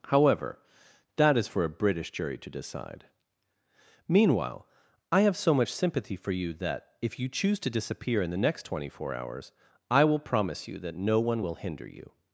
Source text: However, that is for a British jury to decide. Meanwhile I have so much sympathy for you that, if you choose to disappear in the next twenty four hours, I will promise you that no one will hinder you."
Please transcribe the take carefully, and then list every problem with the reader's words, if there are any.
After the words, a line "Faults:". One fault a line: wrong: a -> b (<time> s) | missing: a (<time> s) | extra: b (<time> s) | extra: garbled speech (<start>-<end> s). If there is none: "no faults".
However, that is for a British jury to decide. Meanwhile I have so much sympathy for you that, if you choose to disappear in the next twenty four hours, I will promise you that no one will hinder you."
Faults:
no faults